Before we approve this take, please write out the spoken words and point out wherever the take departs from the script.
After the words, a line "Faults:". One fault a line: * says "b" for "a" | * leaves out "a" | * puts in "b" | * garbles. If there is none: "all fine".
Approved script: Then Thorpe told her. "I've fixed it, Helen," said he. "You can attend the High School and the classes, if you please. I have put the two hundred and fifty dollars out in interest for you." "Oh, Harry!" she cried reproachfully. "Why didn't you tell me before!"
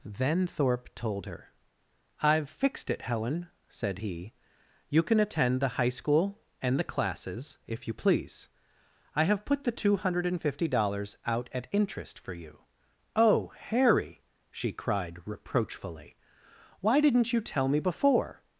Then Thorpe told her. "I've fixed it, Helen," said he. "You can attend the High School and the classes, if you please. I have put the two hundred and fifty dollars out at interest for you." "Oh, Harry!" she cried reproachfully. "Why didn't you tell me before!"
Faults:
* says "at" for "in"